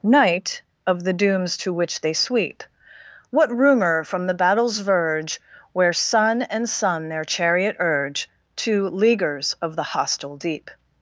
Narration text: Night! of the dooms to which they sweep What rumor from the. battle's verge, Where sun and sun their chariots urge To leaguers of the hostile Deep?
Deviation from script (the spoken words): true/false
true